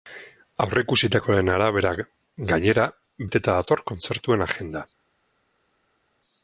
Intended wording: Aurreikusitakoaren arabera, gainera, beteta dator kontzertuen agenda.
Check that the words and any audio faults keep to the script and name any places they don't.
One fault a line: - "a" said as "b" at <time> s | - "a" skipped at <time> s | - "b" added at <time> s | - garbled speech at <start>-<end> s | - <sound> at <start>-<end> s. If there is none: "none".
none